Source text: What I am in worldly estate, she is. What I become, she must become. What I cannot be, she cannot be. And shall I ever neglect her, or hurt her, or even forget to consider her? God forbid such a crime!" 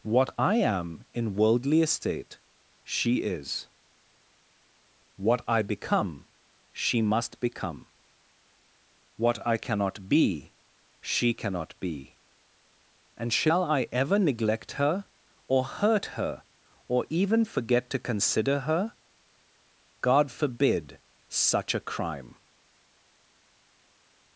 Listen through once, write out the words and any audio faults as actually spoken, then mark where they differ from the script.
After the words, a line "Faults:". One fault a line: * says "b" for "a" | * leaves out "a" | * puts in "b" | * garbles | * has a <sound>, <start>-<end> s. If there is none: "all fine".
What I am in worldly estate, she is. What I become, she must become. What I cannot be, she cannot be. And shall I ever neglect her, or hurt her, or even forget to consider her? God forbid such a crime!"
Faults:
all fine